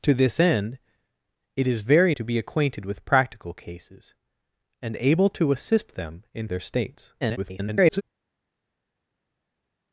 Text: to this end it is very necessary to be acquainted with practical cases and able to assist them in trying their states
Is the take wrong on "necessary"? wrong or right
wrong